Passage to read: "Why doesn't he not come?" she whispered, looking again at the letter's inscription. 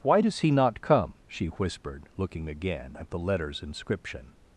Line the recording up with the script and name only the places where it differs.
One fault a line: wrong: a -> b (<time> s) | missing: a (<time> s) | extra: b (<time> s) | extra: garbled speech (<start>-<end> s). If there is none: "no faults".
wrong: doesn't -> does (0.2 s)